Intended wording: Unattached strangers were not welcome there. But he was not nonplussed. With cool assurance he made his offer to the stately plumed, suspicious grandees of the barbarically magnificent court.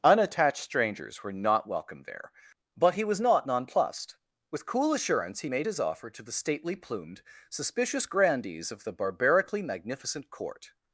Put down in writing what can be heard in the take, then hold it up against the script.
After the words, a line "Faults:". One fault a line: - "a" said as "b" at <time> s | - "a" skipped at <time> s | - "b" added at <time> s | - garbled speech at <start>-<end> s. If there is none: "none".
Unattached strangers were not welcome there. But he was not nonplussed. With cool assurance he made his offer to the stately plumed, suspicious grandees of the barbarically magnificent court.
Faults:
none